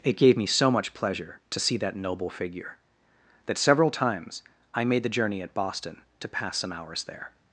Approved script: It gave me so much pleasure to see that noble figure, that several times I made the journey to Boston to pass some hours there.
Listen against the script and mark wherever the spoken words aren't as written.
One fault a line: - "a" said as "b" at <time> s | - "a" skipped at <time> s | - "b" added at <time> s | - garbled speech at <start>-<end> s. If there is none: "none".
- "to" said as "at" at 5.4 s